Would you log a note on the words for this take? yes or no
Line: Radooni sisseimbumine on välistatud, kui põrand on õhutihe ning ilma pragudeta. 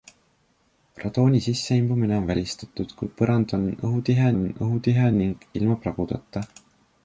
yes